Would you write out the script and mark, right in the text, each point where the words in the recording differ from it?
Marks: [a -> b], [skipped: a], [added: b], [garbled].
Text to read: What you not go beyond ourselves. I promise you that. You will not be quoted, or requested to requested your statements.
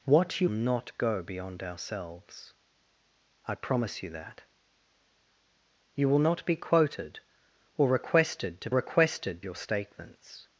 What you not go beyond ourselves. I promise you that. You will not be quoted, or requested to requested your statements.